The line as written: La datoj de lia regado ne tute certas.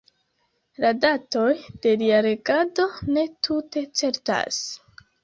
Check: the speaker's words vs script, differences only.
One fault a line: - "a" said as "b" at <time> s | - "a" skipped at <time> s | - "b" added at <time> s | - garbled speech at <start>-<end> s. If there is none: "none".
none